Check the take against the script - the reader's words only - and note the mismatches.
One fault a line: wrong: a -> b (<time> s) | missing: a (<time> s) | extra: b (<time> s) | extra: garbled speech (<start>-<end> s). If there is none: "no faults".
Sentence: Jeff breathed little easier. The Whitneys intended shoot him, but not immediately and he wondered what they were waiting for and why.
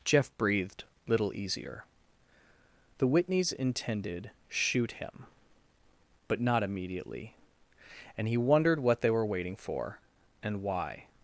no faults